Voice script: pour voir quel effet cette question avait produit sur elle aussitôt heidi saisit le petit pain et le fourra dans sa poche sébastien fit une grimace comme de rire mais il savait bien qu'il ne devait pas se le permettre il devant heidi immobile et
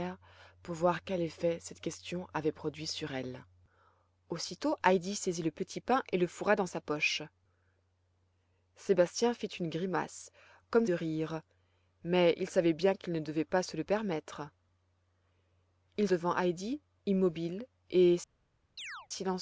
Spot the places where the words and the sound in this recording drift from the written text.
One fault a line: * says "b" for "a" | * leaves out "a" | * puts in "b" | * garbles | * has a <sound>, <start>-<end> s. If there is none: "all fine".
* has a chirp, 18.8-19.1 s